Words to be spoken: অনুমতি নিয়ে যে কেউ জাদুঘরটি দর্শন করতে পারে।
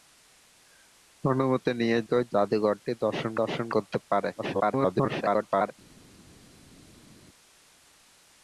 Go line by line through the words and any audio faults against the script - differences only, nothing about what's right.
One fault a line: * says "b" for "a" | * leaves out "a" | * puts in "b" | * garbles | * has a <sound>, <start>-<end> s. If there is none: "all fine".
* leaves out "যে"
* puts in "দর্শন"
* garbles